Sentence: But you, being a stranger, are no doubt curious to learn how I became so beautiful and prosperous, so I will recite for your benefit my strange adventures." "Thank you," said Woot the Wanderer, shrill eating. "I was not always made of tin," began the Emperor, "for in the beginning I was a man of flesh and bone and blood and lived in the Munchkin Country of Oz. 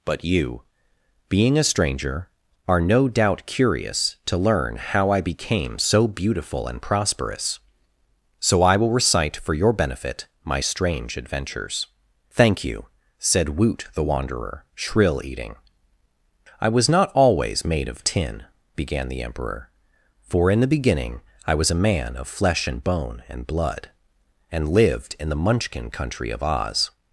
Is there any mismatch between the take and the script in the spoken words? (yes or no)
no